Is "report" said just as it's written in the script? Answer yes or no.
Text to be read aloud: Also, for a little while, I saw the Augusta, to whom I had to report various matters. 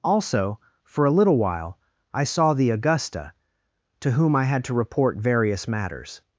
yes